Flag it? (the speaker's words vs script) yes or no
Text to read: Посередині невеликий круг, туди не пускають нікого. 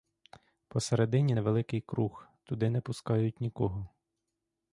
no